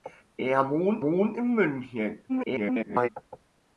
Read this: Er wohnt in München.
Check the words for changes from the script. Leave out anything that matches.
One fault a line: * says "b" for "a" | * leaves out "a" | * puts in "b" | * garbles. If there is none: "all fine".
* puts in "wohnt"
* garbles